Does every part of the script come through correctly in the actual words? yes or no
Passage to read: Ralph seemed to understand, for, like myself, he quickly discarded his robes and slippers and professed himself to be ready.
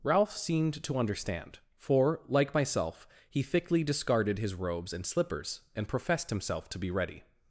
no